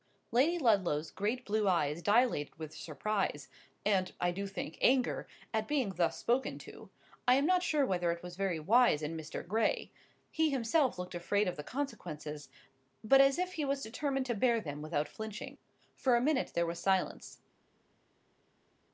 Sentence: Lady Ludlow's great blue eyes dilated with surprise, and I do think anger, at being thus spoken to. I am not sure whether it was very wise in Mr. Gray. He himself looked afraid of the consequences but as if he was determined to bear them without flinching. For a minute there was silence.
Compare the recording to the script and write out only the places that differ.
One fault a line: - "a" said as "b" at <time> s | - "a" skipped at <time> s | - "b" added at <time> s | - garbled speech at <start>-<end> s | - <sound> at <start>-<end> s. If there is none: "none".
none